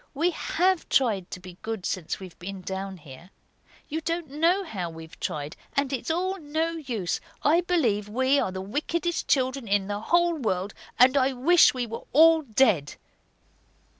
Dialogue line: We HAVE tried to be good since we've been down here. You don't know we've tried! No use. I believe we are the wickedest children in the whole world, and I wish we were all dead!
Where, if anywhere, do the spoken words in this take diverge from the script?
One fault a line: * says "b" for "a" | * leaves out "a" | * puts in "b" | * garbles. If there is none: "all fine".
* puts in "how"
* puts in "And it's all"